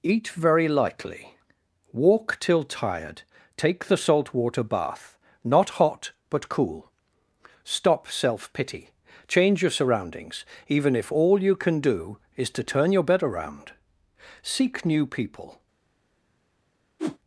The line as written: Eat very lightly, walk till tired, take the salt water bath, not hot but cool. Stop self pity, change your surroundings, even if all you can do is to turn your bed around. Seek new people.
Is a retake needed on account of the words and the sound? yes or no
yes